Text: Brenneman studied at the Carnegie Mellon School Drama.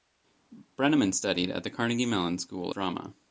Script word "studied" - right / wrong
right